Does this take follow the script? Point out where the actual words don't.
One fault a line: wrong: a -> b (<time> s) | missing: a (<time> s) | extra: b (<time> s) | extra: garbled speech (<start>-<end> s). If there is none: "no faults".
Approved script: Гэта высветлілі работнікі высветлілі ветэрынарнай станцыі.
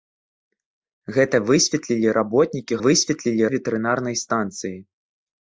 no faults